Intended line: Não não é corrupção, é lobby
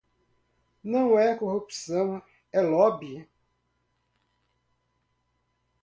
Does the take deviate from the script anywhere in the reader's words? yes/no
yes